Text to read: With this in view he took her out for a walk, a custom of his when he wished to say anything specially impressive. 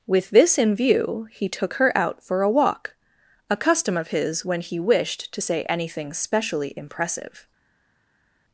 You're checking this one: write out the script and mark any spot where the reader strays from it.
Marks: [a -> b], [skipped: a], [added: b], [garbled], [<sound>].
With this in view he took her out for a walk, a custom of his when he wished to say anything specially impressive.